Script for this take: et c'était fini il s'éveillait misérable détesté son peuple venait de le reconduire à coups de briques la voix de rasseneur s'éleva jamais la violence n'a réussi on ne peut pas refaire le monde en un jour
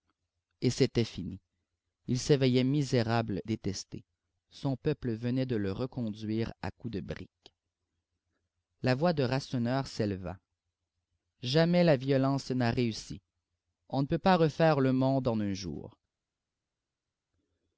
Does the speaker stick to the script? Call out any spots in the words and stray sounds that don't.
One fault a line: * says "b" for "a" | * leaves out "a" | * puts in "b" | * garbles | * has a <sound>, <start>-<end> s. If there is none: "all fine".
all fine